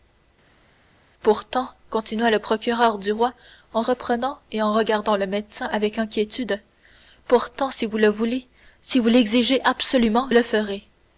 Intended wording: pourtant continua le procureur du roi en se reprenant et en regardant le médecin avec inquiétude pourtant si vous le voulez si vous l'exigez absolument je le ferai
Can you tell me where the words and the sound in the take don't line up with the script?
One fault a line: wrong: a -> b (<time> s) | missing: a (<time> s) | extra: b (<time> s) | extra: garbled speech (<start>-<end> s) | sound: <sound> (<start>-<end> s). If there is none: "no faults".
missing: se (3.8 s)
missing: je (10.3 s)